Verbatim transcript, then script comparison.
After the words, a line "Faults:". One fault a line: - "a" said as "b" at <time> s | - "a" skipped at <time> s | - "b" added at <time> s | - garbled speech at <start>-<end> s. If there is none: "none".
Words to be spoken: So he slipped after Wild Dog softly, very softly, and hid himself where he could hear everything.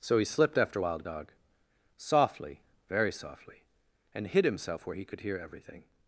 So he slipped after Wild Dog softly, very softly, and hid himself where he could hear everything.
Faults:
none